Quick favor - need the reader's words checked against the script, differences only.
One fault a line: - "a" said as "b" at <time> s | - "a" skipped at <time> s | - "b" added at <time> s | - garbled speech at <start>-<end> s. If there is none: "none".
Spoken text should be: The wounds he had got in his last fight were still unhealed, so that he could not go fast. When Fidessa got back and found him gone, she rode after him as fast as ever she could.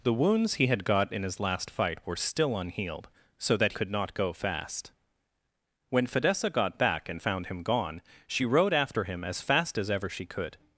- "he" skipped at 3.7 s